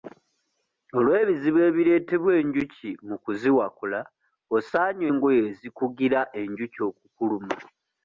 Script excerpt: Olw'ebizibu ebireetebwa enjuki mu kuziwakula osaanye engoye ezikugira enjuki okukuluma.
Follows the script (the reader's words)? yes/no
yes